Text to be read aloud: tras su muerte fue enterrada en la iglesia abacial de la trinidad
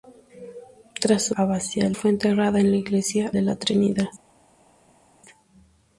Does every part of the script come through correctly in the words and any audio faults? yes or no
no